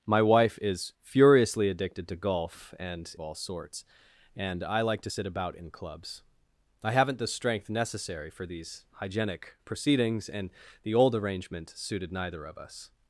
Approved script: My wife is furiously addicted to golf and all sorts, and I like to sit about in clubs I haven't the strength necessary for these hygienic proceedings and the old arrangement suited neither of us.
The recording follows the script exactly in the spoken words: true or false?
true